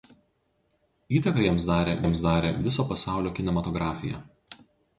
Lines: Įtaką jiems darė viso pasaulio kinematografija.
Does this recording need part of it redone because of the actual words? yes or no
yes